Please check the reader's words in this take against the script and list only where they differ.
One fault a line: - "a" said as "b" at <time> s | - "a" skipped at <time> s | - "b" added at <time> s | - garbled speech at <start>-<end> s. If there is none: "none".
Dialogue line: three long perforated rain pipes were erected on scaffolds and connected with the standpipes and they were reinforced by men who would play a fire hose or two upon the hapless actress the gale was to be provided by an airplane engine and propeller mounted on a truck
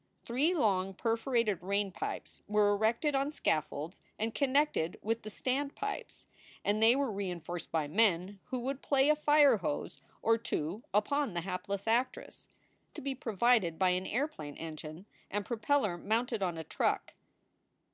- "the gale was" skipped at 12.5 s